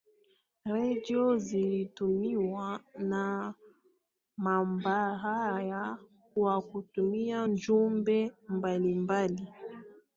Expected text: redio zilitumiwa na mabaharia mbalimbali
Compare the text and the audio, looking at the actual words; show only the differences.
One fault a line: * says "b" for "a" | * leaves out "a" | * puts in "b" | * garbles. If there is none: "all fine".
* puts in "kwa kutuma jumbe"